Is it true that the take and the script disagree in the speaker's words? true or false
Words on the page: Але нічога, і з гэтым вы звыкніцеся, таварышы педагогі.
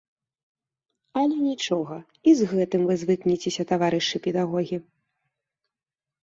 false